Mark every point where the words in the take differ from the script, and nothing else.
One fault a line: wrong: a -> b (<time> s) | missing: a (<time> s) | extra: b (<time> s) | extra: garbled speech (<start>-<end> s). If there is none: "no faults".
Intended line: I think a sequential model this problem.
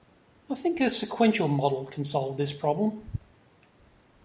extra: can solve (1.9 s)